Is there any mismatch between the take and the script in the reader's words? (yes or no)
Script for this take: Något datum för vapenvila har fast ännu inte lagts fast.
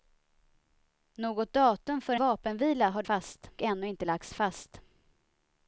no